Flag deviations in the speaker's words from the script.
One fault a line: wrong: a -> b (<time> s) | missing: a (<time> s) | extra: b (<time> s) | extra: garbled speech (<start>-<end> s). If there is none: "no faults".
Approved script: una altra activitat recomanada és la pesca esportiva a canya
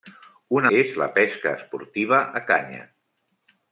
missing: altra activitat recomanada (0.7 s)